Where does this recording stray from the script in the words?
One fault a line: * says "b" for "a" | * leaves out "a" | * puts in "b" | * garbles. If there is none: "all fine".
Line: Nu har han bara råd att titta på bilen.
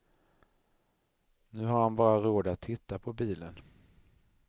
all fine